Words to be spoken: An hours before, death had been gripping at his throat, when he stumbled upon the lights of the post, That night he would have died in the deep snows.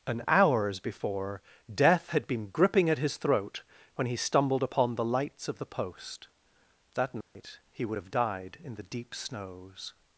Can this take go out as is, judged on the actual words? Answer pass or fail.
pass